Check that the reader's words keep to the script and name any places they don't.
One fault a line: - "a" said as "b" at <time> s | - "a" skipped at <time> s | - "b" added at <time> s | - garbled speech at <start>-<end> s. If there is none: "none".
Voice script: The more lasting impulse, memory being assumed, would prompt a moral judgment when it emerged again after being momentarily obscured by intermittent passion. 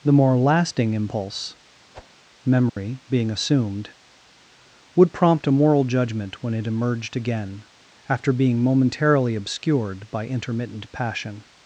none